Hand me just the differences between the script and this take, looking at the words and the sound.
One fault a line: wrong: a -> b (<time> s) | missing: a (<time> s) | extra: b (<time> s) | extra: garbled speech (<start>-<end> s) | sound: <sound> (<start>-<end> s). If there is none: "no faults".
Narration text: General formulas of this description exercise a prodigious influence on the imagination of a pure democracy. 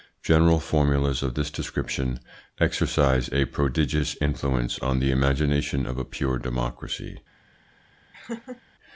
sound: laugh (8.1-8.6 s)